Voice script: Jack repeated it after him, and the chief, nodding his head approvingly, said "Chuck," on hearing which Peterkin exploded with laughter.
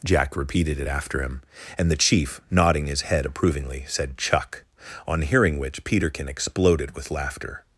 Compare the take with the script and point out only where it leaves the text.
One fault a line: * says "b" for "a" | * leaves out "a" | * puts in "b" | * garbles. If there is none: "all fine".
all fine